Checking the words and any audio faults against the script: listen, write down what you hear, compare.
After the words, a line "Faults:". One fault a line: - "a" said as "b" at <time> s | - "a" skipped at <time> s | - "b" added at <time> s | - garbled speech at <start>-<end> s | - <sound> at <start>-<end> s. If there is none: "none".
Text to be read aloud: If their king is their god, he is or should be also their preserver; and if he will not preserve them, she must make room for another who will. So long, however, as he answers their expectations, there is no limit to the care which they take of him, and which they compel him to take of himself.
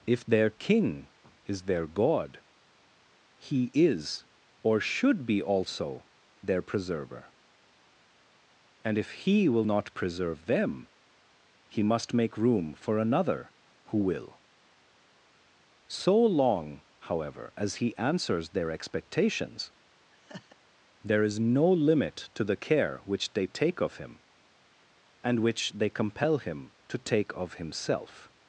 If their king is their god, he is or should be also their preserver; and if he will not preserve them, he must make room for another who will. So long, however, as he answers their expectations, there is no limit to the care which they take of him, and which they compel him to take of himself.
Faults:
- "she" said as "he" at 11.7 s
- laugh at 20.1-20.6 s